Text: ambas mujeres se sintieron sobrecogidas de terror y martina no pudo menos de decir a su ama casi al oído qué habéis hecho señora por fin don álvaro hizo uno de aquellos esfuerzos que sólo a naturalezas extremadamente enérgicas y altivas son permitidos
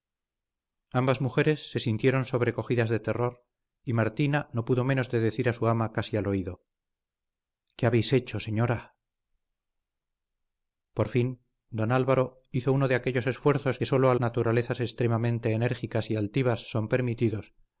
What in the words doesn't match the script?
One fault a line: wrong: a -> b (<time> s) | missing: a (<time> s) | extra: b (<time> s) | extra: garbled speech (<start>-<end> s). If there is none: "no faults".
no faults